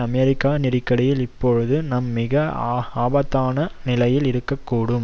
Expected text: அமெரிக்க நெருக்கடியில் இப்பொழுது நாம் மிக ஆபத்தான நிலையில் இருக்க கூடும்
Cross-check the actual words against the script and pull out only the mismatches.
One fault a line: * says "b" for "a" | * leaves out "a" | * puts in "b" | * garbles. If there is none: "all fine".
all fine